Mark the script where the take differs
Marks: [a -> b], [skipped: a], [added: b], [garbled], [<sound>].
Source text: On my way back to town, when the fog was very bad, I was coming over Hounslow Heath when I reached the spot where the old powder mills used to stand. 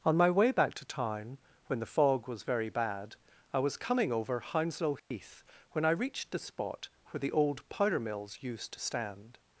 On my way back to town, when the fog was very bad, I was coming over Hounslow Heath [dropout] when I reached the spot where the old powder mills used to stand.